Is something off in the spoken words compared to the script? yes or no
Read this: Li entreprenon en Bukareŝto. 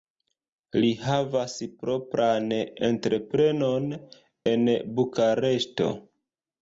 yes